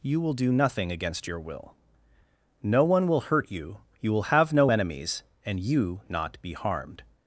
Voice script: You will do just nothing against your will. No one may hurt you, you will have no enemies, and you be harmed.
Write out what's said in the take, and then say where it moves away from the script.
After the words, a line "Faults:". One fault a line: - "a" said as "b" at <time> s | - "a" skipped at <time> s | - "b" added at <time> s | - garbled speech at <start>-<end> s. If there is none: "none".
You will do nothing against your will. No one will hurt you, you will have no enemies, and you not be harmed.
Faults:
- "just" skipped at 0.5 s
- "may" said as "will" at 3.1 s
- "not" added at 6.1 s